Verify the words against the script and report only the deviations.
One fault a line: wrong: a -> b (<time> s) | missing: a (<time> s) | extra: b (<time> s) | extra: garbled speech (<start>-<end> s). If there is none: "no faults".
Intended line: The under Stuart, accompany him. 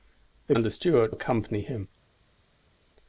no faults